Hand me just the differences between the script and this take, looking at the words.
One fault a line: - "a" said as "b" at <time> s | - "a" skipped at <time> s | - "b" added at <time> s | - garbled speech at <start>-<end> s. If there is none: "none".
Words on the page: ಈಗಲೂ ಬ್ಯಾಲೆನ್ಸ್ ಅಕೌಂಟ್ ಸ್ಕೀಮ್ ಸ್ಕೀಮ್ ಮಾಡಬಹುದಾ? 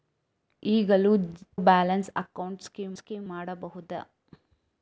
none